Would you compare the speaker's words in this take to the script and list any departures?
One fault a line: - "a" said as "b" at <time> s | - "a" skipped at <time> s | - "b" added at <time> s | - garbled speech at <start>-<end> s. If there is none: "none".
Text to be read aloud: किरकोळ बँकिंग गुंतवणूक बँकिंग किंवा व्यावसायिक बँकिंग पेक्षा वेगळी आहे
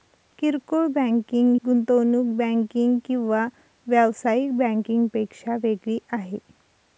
none